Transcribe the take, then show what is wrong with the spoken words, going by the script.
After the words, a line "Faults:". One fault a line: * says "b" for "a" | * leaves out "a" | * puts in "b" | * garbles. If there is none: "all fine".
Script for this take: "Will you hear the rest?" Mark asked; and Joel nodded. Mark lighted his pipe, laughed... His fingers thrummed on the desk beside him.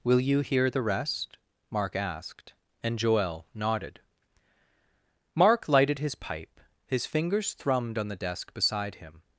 "Will you hear the rest?" Mark asked; and Joel nodded. Mark lighted his pipe, His fingers thrummed on the desk beside him.
Faults:
* leaves out "laughed"